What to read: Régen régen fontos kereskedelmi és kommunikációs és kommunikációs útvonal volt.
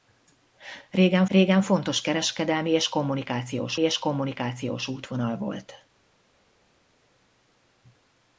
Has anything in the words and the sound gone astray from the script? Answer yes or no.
no